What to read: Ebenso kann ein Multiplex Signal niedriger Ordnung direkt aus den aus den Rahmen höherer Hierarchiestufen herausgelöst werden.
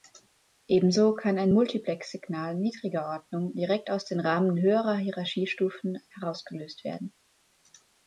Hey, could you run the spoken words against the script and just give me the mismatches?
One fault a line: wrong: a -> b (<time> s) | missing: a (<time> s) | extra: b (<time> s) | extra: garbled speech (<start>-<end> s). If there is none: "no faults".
missing: aus den (4.2 s)